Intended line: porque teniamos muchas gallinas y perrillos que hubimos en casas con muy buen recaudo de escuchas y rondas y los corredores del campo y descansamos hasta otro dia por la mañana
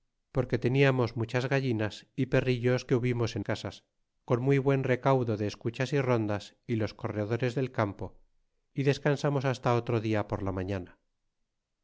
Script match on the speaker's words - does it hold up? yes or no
yes